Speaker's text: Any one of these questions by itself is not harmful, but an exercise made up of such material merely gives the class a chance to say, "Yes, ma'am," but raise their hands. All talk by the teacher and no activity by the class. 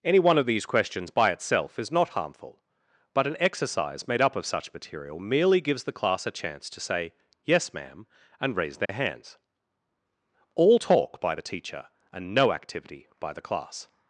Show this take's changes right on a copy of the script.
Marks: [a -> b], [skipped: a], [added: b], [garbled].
Any one of these questions by itself is not harmful, but an exercise made up of such material merely gives the class a chance to say, "Yes, ma'am," [but -> and] raise their hands. All talk by the teacher and no activity by the class.